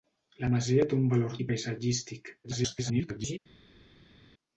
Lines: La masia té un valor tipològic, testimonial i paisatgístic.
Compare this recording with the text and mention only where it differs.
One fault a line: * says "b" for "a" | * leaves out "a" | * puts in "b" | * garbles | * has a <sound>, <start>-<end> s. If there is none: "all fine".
* leaves out "tipològic testimonial"
* garbles